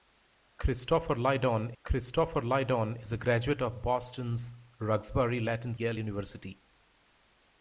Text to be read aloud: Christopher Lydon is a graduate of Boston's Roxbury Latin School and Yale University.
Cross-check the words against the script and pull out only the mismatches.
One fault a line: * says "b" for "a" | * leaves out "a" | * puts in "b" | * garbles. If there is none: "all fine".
* puts in "christopher Lydon"
* leaves out "School and"